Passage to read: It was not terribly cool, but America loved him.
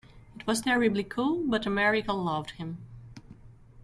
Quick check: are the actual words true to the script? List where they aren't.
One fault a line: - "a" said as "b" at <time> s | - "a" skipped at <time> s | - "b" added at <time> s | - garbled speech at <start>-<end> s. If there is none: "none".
- "not" skipped at 0.6 s